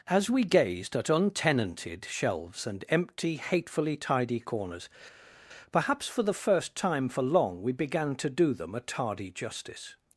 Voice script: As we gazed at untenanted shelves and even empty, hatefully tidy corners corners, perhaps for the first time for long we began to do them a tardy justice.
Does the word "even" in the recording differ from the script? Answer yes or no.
yes